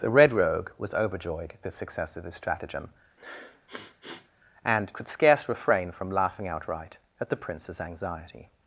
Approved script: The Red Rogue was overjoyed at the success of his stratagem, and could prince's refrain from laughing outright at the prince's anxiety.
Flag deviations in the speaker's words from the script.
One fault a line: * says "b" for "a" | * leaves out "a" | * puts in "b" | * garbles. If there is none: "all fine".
* says "scarce" for "prince's"